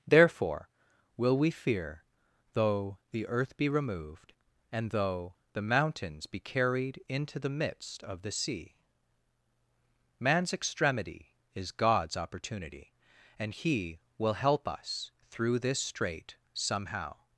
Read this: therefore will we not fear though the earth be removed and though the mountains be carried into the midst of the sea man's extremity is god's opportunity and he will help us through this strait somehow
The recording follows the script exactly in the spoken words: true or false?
false